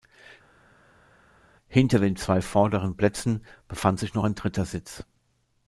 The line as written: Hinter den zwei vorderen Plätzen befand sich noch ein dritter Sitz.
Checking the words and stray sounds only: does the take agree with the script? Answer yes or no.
yes